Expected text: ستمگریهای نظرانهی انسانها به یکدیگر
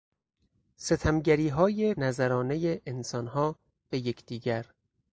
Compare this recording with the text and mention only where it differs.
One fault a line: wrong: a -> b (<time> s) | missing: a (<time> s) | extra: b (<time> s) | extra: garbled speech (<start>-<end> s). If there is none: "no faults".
no faults